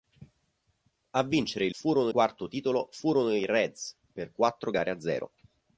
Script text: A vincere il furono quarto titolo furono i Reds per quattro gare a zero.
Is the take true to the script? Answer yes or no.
yes